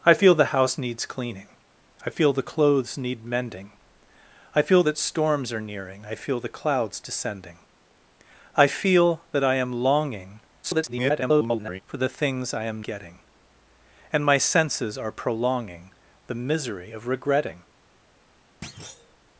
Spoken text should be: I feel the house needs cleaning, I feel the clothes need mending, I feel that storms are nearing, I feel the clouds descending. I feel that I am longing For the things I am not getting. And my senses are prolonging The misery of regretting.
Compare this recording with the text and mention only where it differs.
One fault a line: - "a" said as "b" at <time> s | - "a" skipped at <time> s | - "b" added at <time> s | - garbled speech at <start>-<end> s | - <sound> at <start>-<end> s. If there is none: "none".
- garbled speech at 10.6-11.8 s
- "not" skipped at 12.8 s
- thud at 18.6-19.2 s